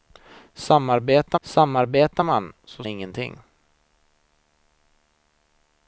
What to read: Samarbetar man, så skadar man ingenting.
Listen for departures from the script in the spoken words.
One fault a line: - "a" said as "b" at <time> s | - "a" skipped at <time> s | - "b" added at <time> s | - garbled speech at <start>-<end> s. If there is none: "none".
- "samarbetar" added at 1.4 s
- "skadar man" skipped at 2.8 s